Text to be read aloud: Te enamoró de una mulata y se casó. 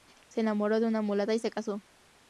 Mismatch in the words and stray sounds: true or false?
true